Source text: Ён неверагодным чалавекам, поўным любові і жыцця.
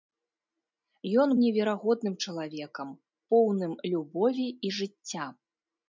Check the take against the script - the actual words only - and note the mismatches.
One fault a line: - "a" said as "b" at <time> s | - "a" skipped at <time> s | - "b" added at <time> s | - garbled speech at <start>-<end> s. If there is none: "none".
none